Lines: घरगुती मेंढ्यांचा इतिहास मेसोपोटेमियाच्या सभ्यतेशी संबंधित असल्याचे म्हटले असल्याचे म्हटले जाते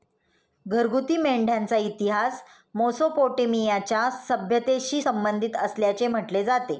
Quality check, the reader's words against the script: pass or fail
fail